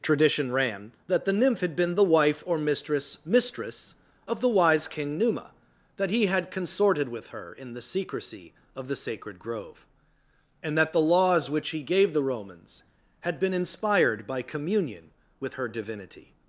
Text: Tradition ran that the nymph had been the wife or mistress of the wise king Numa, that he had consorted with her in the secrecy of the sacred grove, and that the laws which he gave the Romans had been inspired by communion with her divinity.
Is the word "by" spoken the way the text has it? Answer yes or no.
yes